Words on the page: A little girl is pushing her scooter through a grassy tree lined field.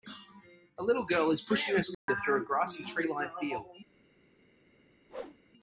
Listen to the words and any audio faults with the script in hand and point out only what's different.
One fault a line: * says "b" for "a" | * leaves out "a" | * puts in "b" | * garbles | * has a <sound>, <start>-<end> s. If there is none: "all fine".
* has a dropout, 1.9-2.1 s
* has a whoosh, 5.1-5.4 s